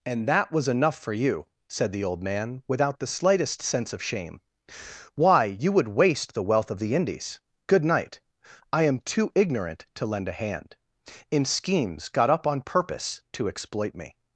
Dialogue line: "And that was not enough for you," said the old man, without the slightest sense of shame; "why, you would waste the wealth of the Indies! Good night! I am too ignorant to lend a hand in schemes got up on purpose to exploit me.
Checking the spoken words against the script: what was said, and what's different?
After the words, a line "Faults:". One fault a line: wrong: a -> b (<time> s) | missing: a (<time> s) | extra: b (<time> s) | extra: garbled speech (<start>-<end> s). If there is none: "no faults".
"And that was enough for you," said the old man, without the slightest sense of shame; "why, you would waste the wealth of the Indies! Good night! I am too ignorant to lend a hand in schemes got up on purpose to exploit me.
Faults:
missing: not (0.7 s)